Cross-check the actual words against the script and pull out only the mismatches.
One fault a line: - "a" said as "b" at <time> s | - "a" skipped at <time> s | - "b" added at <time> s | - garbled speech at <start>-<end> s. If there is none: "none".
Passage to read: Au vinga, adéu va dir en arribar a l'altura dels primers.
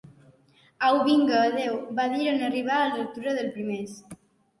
none